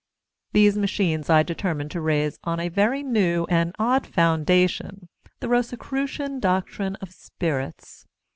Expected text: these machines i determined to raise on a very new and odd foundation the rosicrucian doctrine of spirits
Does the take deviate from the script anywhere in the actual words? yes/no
no